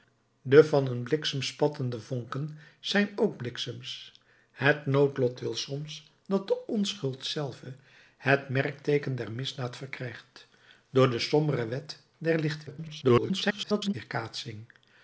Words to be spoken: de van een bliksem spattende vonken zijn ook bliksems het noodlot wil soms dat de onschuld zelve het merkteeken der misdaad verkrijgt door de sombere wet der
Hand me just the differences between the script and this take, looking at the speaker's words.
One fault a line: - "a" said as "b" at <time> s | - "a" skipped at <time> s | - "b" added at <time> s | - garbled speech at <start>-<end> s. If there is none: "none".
- garbled speech at 12.7-13.9 s